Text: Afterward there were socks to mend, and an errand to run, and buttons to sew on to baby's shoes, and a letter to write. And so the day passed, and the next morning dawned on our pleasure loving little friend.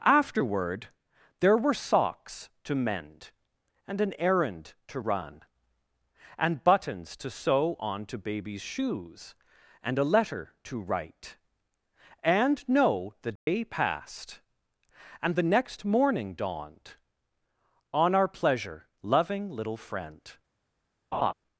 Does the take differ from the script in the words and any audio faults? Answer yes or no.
yes